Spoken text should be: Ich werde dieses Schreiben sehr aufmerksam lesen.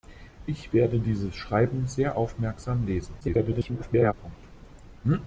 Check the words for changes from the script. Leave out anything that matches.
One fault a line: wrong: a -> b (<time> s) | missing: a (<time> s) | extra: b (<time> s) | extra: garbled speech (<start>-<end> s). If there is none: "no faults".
extra: garbled speech (3.2-4.1 s)